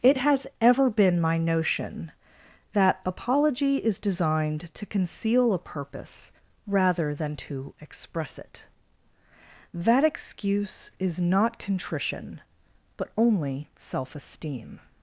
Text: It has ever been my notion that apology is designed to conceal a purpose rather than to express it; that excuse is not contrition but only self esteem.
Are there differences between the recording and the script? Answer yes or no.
no